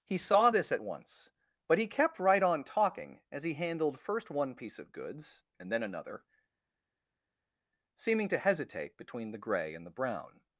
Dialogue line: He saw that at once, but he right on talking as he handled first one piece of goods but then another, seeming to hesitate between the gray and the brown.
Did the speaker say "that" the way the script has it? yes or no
no